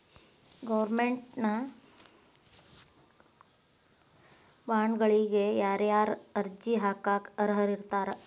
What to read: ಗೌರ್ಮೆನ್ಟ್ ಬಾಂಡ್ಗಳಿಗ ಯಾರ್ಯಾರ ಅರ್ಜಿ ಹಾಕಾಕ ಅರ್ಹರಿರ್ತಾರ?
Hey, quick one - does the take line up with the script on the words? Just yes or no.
yes